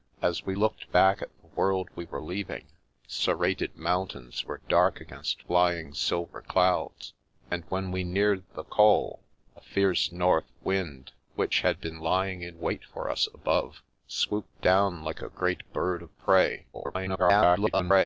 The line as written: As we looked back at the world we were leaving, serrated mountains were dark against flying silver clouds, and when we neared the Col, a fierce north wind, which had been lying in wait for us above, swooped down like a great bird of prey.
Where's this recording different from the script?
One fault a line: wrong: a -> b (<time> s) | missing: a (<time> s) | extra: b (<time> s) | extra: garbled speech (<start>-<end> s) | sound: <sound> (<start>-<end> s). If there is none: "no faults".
extra: garbled speech (16.7-18.1 s)